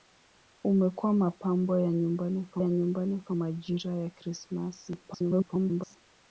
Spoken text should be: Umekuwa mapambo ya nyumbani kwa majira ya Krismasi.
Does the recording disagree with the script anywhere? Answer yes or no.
yes